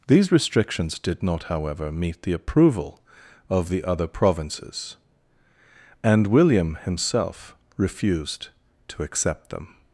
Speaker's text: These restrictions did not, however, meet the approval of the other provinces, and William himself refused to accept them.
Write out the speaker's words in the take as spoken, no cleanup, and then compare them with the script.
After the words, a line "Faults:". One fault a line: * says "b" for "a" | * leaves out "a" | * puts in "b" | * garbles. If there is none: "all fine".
These restrictions did not, however, meet the approval of the other provinces, and William himself refused to accept them.
Faults:
all fine